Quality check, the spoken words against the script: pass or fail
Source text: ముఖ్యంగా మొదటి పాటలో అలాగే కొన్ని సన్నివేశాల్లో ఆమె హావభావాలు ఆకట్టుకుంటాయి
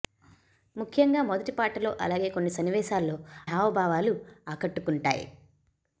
fail